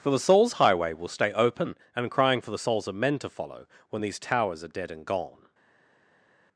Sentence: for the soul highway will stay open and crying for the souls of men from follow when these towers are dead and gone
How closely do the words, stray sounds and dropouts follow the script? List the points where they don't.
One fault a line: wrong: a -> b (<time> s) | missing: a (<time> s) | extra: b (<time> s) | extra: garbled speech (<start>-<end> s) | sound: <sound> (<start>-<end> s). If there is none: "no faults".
wrong: soul -> souls (0.2 s)
wrong: from -> to (3.2 s)